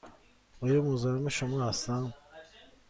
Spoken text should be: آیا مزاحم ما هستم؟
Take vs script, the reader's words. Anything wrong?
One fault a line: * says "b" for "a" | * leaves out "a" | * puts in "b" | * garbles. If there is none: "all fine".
* says "شما" for "ما"